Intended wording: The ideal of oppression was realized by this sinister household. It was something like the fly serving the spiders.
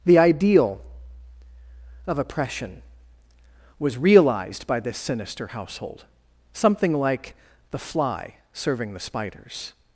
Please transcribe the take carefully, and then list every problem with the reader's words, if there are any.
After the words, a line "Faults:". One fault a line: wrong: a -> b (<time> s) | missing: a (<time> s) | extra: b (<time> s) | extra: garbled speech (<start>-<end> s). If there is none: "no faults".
The ideal of oppression was realized by this sinister household. something like the fly serving the spiders.
Faults:
missing: It was (6.0 s)